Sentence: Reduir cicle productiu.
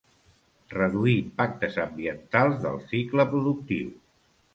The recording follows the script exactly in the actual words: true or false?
false